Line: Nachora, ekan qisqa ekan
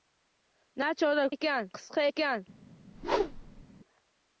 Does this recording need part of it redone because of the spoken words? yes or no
no